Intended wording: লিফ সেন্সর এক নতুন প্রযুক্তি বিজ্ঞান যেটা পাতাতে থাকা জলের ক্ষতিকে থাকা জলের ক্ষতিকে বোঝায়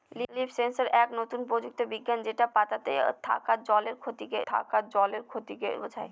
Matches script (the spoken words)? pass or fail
pass